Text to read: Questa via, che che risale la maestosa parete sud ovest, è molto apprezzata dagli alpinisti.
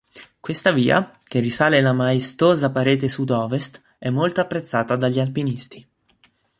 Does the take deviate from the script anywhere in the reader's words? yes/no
yes